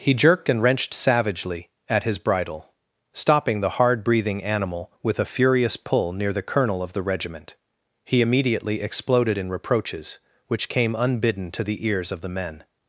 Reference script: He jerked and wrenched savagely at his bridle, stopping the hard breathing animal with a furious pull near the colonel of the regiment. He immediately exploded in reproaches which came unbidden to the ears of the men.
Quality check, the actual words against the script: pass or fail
pass